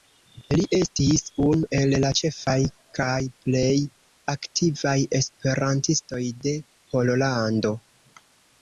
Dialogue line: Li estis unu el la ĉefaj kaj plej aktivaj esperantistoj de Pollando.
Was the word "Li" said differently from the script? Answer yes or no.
no